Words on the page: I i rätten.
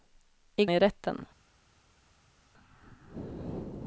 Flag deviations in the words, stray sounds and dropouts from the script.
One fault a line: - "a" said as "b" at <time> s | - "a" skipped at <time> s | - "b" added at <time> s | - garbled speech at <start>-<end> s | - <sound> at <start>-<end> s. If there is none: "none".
none